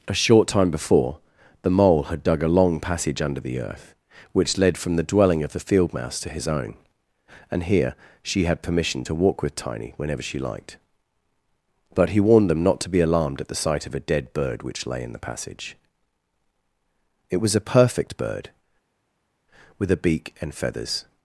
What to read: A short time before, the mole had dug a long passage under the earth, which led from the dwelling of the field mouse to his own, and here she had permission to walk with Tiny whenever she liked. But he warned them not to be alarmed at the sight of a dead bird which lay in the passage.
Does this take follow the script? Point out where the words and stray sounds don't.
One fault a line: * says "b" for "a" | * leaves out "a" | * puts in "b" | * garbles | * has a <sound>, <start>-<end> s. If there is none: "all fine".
* puts in "It was a perfect bird with a beak and feathers"